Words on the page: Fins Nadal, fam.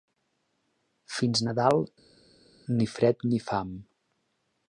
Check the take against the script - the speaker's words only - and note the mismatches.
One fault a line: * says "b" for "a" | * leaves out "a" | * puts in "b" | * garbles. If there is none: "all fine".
* puts in "ni fred ni"